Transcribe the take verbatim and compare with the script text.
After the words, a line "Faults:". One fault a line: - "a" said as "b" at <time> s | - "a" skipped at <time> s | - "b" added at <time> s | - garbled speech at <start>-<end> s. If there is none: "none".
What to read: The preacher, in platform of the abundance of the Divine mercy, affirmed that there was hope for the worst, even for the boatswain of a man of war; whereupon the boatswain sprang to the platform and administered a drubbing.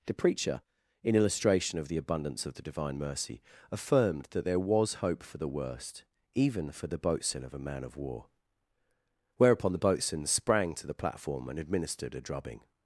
The preacher, in illustration of the abundance of the Divine mercy, affirmed that there was hope for the worst, even for the boatswain of a man of war; whereupon the boatswain sprang to the platform and administered a drubbing.
Faults:
- "platform" said as "illustration" at 1.1 s